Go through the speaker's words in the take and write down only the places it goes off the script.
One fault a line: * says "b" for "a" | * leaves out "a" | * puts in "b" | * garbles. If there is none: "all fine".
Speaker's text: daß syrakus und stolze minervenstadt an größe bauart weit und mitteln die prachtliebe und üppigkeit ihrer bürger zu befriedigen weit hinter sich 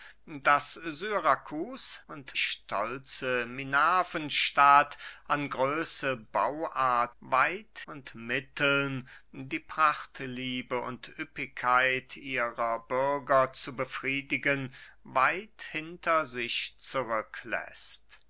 all fine